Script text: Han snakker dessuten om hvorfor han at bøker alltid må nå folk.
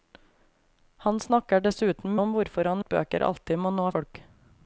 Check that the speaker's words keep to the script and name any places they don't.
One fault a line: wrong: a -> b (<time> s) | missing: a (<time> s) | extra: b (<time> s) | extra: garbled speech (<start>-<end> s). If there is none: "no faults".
no faults